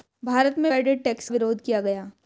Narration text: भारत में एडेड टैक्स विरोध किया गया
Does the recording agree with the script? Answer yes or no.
yes